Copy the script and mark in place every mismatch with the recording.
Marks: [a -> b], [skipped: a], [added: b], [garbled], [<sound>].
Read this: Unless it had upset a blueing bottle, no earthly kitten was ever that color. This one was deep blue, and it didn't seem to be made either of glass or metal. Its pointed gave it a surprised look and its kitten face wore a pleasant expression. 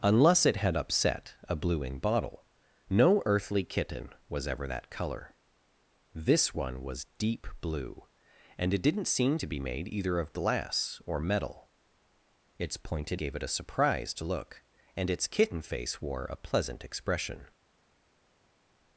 Unless it had upset a blueing bottle, no earthly kitten was ever that color. This one was deep blue, and it didn't seem to be made either of glass or metal. Its pointed gave it a surprised look and its kitten face wore a pleasant expression.